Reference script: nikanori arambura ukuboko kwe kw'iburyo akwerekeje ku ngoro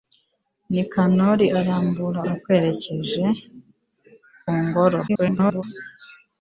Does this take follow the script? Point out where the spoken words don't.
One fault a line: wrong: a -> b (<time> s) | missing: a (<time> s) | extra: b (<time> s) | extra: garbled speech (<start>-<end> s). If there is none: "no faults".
missing: ukuboko kwe kw'iburyo (2.2 s)
extra: garbled speech (5.1-5.6 s)